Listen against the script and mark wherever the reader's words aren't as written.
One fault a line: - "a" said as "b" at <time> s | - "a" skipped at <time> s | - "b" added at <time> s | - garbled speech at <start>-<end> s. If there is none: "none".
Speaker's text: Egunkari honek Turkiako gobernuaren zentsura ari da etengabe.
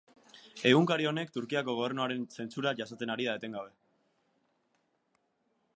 - "jasaten" added at 2.8 s